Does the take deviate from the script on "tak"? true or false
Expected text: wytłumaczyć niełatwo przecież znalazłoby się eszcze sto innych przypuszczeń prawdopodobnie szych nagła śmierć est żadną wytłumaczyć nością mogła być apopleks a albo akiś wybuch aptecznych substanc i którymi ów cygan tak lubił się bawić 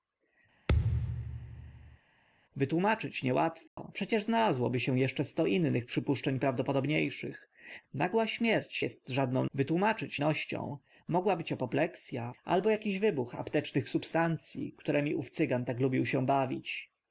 false